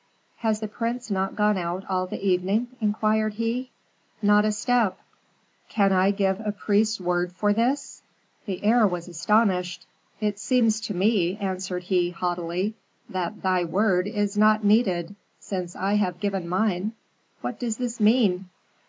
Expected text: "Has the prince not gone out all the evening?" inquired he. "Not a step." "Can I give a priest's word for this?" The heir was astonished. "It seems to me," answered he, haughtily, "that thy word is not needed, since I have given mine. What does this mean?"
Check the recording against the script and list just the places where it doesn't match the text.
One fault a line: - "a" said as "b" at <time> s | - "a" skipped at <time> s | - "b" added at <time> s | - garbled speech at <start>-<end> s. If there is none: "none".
none